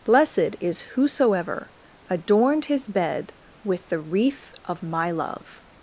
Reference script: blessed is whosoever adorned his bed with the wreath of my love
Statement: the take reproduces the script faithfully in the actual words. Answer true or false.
true